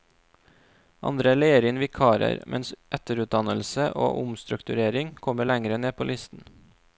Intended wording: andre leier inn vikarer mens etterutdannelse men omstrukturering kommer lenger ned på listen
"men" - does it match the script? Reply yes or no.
no